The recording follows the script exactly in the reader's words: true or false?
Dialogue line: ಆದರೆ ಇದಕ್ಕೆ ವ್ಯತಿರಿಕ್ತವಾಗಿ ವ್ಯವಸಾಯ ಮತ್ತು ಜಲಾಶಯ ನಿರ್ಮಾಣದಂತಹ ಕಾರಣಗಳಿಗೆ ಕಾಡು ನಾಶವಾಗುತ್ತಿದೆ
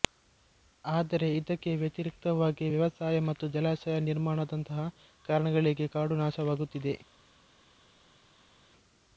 true